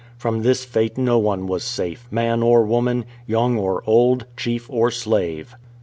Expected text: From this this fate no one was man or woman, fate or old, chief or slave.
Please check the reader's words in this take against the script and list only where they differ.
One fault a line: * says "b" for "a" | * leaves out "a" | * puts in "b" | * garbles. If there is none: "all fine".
* leaves out "this"
* puts in "safe"
* says "young" for "fate"